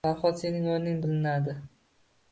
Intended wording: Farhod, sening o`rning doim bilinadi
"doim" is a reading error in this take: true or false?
true